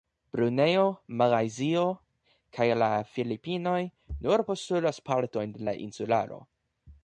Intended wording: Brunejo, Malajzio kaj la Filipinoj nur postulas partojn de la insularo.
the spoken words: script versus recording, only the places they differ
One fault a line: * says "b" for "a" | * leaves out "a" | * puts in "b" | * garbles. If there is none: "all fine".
all fine